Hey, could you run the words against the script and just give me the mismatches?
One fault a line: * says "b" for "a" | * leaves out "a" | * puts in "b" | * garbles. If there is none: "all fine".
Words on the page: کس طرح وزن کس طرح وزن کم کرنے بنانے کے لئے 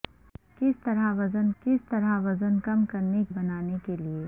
all fine